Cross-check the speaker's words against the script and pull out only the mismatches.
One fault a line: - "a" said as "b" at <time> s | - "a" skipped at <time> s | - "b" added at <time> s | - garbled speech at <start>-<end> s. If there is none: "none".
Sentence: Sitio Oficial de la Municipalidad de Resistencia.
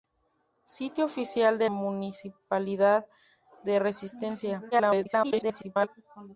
- "la" skipped at 1.7 s
- garbled speech at 4.7-5.9 s